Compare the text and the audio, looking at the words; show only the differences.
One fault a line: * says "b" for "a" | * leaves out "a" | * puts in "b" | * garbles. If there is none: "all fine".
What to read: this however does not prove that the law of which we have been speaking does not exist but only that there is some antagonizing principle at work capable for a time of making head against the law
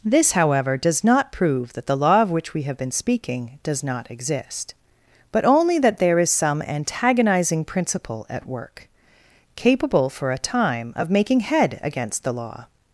all fine